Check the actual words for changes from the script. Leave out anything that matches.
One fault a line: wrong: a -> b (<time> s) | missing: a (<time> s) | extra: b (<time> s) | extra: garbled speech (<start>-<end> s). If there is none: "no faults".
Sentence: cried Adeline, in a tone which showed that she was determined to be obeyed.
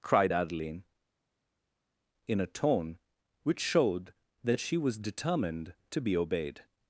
no faults